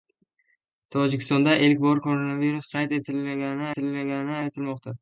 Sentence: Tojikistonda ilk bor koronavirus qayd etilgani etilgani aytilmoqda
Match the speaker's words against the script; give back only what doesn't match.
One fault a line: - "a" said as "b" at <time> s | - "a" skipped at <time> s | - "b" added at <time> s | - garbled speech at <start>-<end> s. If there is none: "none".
none